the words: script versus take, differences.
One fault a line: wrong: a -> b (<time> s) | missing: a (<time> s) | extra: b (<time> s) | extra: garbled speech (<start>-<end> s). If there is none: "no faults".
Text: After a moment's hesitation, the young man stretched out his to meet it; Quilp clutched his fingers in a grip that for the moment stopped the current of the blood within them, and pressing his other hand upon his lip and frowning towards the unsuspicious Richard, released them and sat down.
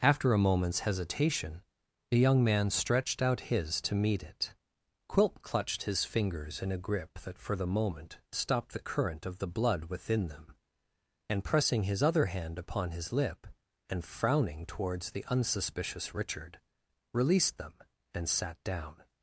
no faults